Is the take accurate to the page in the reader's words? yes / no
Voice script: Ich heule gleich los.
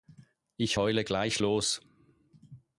yes